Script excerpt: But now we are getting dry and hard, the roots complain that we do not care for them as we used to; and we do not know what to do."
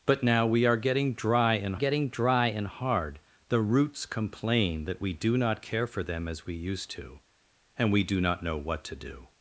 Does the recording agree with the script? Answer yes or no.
no